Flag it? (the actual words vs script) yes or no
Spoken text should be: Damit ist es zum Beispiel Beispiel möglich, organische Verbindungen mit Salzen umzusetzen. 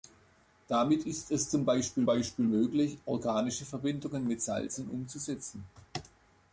no